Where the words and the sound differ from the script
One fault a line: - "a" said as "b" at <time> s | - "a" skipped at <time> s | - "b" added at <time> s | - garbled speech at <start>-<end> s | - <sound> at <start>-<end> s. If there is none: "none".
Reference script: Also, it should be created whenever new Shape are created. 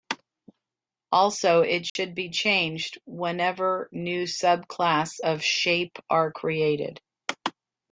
- dropout at 1.9-2.0 s
- "created" said as "changed" at 2.3 s
- "subclass of" added at 4.2 s